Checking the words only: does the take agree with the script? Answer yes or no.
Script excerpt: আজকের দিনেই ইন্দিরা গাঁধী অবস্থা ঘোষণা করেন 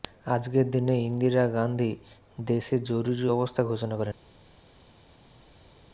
no